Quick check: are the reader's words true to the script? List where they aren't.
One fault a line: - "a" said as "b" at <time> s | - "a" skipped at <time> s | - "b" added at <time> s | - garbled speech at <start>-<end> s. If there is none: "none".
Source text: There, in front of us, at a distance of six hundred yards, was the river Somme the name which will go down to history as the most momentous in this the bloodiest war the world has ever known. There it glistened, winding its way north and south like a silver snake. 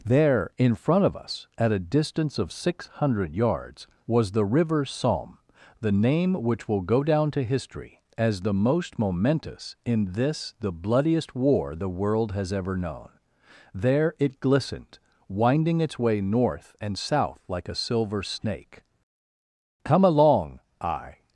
- "Come along I" added at 19.9 s